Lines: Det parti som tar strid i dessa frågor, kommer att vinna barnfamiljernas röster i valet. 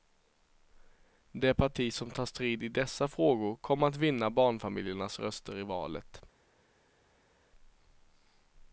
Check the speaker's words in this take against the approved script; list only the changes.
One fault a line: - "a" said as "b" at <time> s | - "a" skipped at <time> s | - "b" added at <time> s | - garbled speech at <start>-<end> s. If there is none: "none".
none